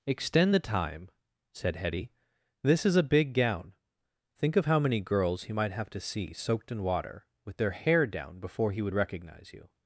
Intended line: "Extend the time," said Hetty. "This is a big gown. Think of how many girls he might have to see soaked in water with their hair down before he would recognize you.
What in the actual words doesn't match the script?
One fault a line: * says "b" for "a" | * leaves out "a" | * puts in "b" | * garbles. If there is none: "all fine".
all fine